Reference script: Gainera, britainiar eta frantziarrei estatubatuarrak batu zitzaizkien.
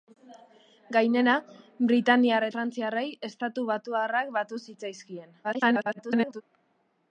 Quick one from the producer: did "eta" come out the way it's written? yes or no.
no